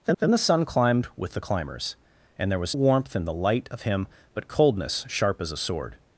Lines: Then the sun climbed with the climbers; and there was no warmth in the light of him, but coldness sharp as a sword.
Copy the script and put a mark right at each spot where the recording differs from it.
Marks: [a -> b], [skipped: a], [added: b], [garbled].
Then [added: then] the sun climbed with the climbers; and there was [skipped: no] warmth in the light of him, but coldness sharp as a sword.